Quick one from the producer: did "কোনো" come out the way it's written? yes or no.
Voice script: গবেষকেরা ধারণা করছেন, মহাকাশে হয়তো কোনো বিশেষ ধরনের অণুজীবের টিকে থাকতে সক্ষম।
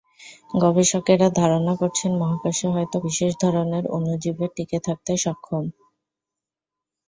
no